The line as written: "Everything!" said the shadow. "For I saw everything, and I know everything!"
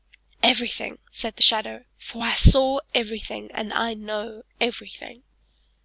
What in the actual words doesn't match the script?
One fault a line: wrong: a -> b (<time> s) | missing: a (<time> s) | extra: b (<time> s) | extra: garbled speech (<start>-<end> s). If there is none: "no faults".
no faults